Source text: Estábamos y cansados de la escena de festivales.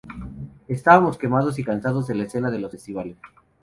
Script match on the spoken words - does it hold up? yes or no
no